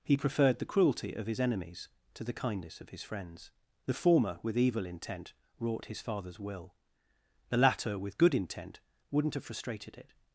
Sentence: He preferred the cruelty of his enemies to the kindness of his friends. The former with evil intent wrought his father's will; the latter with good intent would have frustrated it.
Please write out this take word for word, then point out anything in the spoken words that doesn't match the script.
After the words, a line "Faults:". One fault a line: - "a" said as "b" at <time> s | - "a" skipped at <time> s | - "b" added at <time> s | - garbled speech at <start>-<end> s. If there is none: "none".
He preferred the cruelty of his enemies to the kindness of his friends. The former with evil intent wrought his father's will; the latter with good intent wouldn't have frustrated it.
Faults:
- "would" said as "wouldn't" at 9.1 s